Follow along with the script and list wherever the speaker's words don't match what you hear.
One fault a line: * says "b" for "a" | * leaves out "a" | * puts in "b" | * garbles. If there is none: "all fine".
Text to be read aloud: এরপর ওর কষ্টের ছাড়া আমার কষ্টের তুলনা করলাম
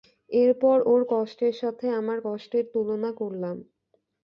* says "সাথে" for "ছাড়া"